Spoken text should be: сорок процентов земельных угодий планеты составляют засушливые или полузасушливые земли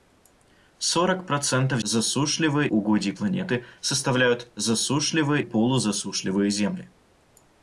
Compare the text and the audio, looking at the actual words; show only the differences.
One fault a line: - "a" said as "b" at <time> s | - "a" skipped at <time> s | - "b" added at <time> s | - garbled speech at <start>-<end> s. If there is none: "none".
- "земельных" said as "засушливые" at 1.8 s
- "или" skipped at 5.4 s